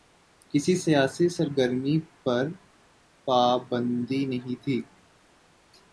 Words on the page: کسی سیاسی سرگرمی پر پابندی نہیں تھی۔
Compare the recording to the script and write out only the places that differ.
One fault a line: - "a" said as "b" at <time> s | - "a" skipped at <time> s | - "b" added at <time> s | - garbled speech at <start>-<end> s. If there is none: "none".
none